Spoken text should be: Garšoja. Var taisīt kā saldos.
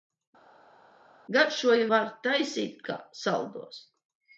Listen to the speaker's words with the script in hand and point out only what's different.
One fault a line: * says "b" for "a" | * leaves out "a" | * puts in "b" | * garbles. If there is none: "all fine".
all fine